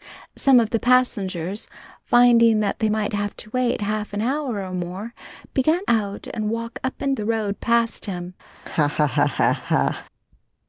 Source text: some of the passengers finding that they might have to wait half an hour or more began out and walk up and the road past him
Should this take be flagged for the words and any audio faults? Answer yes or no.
yes